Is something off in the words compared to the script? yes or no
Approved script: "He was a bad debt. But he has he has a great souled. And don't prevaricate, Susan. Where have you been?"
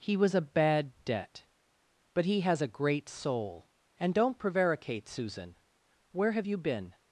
yes